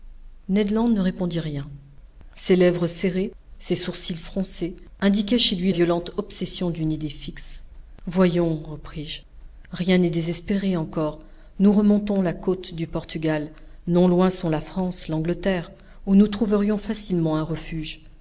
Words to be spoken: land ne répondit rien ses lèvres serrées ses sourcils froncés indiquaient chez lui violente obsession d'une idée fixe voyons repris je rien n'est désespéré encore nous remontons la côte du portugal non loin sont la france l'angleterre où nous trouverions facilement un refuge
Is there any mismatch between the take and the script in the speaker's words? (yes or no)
no